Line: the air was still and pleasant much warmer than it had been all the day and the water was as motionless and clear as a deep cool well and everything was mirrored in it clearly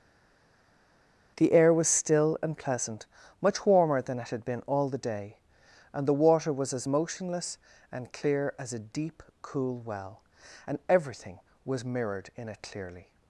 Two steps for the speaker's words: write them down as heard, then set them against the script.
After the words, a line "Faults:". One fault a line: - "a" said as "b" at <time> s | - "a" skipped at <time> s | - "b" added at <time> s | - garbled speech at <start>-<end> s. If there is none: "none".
the air was still and pleasant much warmer than it had been all the day and the water was as motionless and clear as a deep cool well and everything was mirrored in it clearly
Faults:
none